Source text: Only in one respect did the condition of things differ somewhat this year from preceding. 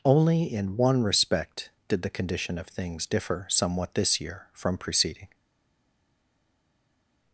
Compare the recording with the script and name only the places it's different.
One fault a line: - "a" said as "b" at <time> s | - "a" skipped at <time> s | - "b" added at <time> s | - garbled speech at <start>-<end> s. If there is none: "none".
none